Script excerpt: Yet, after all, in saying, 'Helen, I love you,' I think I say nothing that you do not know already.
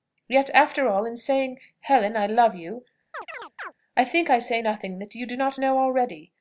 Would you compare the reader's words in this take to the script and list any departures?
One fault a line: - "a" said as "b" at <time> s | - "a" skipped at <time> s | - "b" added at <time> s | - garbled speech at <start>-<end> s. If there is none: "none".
none